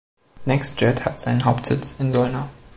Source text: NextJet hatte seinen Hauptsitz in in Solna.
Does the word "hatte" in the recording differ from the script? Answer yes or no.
yes